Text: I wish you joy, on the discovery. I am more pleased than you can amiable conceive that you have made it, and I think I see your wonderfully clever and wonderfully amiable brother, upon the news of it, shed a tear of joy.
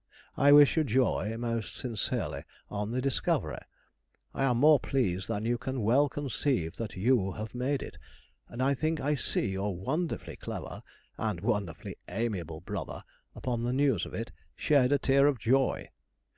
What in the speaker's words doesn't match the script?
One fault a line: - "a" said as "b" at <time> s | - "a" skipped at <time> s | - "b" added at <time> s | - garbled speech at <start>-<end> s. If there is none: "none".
- "most sincerely" added at 1.4 s
- "amiable" said as "well" at 5.8 s